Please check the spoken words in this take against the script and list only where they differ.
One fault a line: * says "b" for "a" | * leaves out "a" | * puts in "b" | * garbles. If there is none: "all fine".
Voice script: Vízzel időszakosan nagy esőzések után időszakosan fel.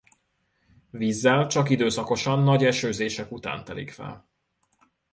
* puts in "csak"
* says "telik" for "időszakosan"